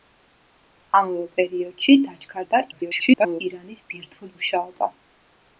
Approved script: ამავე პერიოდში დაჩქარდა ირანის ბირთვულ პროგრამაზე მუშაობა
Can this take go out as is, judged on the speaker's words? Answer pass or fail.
fail